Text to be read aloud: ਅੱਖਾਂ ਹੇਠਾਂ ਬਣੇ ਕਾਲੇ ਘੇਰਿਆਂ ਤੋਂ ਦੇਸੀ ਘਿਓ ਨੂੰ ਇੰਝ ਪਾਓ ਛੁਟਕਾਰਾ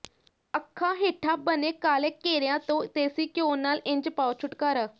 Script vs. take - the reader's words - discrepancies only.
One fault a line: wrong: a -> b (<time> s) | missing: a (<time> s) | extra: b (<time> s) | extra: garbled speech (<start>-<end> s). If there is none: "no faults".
wrong: ਨੂੰ -> ਨਾਲ (3.6 s)